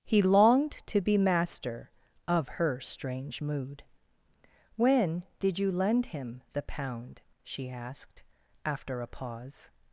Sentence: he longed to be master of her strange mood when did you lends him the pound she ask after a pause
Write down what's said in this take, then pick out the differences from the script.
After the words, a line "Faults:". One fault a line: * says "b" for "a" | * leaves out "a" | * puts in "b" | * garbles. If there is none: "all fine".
he longed to be master of her strange mood when did you lend him the pound she asked after a pause
Faults:
* says "lend" for "lends"
* says "asked" for "ask"